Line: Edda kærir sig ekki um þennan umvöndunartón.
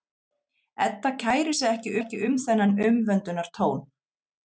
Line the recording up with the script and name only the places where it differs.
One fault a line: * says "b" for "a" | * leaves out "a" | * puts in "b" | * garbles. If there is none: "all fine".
* puts in "ekki"